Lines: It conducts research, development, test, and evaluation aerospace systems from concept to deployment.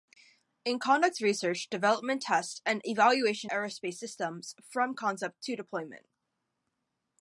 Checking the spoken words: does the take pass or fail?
pass